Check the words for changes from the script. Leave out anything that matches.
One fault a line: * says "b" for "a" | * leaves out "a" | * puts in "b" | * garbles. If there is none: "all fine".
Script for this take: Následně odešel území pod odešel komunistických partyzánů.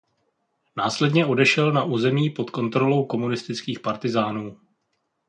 * puts in "na"
* says "kontrolou" for "odešel"